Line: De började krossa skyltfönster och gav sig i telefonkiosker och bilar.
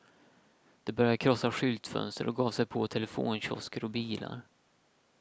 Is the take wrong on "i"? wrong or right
wrong